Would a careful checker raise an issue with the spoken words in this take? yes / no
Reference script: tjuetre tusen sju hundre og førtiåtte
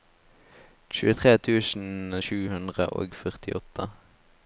no